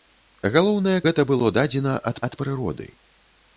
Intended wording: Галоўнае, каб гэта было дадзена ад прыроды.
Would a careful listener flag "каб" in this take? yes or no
yes